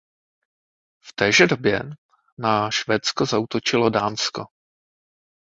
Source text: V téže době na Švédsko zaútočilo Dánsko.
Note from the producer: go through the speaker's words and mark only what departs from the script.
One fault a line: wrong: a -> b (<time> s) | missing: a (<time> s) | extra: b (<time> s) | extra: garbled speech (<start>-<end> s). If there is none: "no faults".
no faults